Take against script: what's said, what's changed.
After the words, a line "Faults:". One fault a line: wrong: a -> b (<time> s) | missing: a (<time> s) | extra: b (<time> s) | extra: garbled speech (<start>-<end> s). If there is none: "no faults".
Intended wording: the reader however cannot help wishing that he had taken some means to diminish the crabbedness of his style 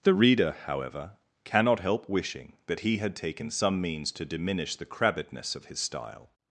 the reader however cannot help wishing that he had taken some means to diminish the crabbedness of his style
Faults:
no faults